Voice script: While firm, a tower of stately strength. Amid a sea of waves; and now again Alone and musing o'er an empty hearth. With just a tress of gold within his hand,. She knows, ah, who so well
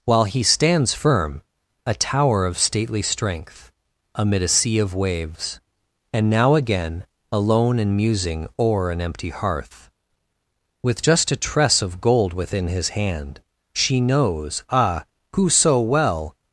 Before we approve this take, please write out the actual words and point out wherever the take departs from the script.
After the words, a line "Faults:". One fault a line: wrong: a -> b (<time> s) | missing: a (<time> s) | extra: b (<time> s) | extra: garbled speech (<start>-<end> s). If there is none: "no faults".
While he stands firm, a tower of stately strength. Amid a sea of waves; and now again Alone and musing o'er an empty hearth. With just a tress of gold within his hand,. She knows, ah, who so well
Faults:
extra: he stands (0.2 s)